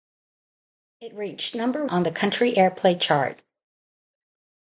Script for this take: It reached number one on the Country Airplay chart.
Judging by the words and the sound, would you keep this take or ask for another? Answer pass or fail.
fail